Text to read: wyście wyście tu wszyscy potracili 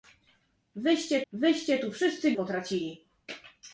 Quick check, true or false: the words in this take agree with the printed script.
true